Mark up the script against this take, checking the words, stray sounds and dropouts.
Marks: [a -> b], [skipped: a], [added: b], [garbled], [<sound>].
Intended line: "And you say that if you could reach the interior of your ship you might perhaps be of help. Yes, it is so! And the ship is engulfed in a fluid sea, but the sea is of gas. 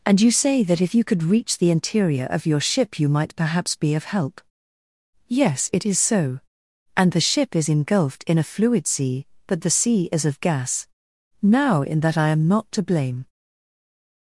"And you say that if you could reach the interior of your ship you might perhaps be of help. Yes, it is so! And the ship is engulfed in a fluid sea, but the sea is of gas. [added: Now in that I am not to blame]